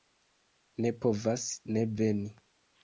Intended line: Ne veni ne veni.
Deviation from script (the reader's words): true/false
true